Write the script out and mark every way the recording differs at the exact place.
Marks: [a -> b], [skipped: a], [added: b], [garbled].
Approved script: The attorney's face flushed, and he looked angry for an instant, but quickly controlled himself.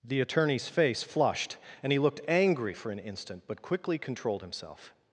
The attorney's face flushed, and he looked angry for an instant, but quickly controlled himself.